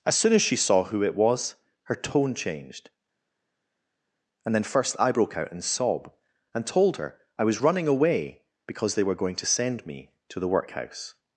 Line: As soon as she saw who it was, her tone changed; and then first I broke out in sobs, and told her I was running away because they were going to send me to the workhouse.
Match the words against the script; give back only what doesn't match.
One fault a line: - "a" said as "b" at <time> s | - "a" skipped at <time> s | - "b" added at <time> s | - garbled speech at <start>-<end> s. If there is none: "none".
- "sobs" said as "sob" at 5.6 s